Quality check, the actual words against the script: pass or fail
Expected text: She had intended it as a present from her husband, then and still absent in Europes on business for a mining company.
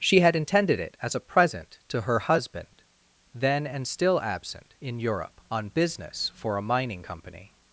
fail